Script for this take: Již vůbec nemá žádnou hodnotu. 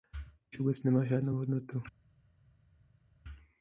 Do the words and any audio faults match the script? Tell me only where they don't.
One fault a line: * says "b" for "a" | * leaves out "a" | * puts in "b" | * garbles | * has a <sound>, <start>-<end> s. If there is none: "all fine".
all fine